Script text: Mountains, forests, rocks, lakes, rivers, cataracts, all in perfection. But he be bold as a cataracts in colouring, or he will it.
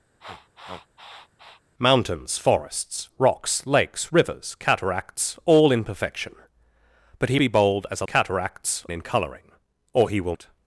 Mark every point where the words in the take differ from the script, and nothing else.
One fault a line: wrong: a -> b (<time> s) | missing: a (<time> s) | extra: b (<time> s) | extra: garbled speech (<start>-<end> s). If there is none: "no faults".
no faults